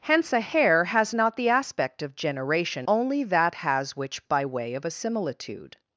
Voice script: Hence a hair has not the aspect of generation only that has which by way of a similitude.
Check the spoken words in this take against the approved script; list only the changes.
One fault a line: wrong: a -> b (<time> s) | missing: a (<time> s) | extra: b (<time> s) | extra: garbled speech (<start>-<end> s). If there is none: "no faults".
no faults